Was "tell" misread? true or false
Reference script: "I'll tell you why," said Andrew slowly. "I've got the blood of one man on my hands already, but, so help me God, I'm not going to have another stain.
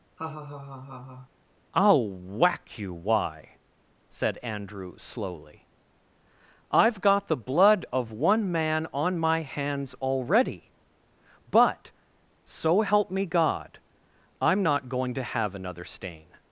true